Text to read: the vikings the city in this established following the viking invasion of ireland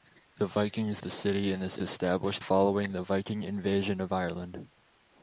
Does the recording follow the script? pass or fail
pass